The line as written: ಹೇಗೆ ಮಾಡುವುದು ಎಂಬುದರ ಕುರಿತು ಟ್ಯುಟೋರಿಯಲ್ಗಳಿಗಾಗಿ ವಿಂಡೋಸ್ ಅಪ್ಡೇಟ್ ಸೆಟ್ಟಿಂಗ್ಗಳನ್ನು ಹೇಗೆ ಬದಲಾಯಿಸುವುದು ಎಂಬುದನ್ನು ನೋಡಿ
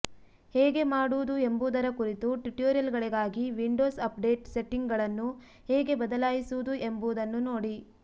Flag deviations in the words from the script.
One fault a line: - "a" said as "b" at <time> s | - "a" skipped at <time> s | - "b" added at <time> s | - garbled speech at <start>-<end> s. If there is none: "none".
none